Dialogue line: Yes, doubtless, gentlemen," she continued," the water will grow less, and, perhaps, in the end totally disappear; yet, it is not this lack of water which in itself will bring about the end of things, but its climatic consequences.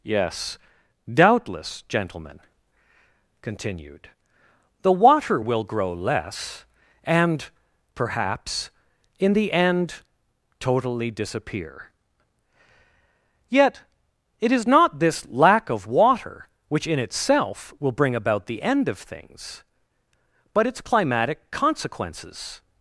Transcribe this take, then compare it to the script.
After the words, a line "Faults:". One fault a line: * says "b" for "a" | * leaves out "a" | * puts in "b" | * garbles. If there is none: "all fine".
Yes, doubtless, gentlemen," continued," the water will grow less, and, perhaps, in the end totally disappear; yet, it is not this lack of water which in itself will bring about the end of things, but its climatic consequences.
Faults:
* leaves out "she"